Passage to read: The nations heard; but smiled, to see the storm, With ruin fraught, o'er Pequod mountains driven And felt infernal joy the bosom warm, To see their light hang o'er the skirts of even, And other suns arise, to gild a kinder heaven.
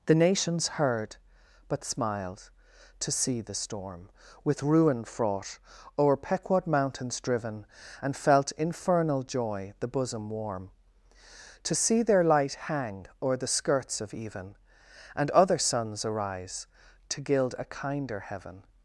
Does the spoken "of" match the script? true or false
true